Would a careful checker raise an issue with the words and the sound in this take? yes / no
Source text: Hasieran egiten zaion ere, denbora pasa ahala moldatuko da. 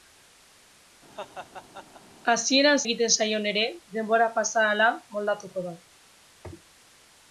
yes